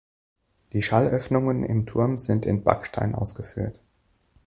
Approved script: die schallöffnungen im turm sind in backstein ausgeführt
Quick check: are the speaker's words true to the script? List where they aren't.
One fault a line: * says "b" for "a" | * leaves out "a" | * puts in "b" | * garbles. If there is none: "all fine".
all fine